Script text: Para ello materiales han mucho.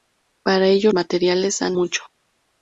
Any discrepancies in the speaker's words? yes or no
no